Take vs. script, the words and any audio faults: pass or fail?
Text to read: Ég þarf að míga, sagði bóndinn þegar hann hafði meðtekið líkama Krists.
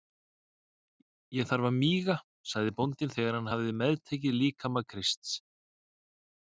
pass